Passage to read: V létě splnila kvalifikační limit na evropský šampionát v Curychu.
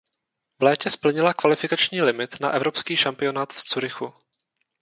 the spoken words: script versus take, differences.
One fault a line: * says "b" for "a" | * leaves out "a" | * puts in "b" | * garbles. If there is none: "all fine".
all fine